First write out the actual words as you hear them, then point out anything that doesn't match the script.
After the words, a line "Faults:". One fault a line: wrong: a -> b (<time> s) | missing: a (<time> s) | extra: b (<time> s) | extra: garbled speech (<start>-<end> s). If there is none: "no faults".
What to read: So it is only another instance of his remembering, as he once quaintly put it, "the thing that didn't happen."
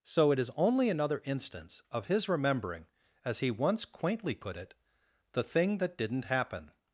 So it is only another instance of his remembering, as he once quaintly put it, "the thing that didn't happen."
Faults:
no faults